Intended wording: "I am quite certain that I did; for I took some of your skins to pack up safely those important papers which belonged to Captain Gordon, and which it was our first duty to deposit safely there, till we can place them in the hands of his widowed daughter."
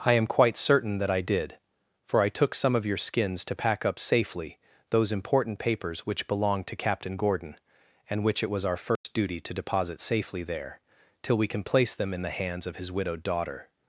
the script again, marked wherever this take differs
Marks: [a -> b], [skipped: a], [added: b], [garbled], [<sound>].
"I am quite certain that I did; for I took some of your skins to pack up safely those important papers which belonged to Captain Gordon, and which it was our first [dropout] duty to deposit safely there, till we can place them in the hands of his widowed daughter."